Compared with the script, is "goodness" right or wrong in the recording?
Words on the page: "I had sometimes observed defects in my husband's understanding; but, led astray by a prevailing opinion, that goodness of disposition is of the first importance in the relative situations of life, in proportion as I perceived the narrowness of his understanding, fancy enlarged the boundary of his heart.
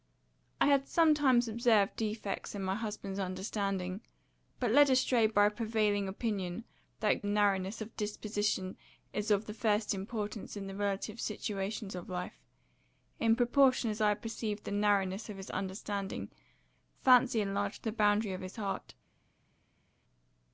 wrong